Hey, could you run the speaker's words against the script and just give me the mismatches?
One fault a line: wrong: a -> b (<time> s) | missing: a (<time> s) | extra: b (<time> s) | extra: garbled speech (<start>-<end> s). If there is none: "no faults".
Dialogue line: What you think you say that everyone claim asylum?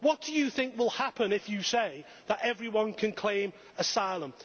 extra: do (0.2 s)
extra: will happen if (0.8 s)
extra: can (2.9 s)